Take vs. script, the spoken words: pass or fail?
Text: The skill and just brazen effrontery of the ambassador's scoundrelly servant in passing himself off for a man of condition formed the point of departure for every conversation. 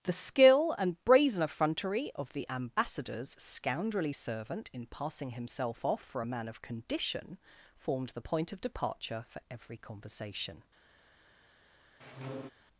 fail